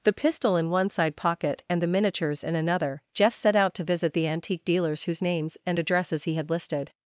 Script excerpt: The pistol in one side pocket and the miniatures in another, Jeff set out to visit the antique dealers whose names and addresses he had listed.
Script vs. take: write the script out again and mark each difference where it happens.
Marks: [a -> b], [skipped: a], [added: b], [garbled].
The pistol in one side pocket and the miniatures in another, Jeff set out to visit the antique dealers whose names and addresses he had listed.